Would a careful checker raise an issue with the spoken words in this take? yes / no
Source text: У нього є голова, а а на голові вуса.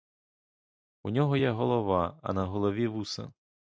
yes